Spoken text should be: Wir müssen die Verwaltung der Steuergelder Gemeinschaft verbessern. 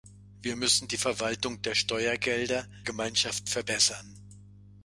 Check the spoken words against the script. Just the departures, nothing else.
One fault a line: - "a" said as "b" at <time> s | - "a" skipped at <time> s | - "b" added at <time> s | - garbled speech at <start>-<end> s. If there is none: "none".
none